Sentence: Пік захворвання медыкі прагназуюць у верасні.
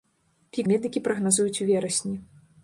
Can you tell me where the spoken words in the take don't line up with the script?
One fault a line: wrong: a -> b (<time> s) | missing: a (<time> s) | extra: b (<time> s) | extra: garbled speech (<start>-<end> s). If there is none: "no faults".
missing: захворвання (0.7 s)